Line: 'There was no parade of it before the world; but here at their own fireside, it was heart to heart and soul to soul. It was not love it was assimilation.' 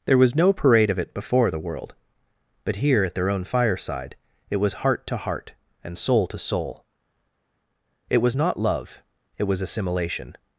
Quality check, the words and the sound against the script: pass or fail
pass